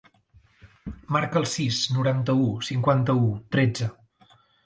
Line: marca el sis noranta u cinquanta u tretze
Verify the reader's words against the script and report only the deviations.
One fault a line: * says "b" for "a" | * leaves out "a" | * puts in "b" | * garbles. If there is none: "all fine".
all fine